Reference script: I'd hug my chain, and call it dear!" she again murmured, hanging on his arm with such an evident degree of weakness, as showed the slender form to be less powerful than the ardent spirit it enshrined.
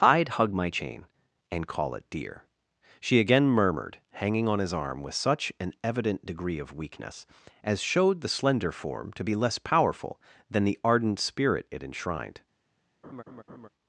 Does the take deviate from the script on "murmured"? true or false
false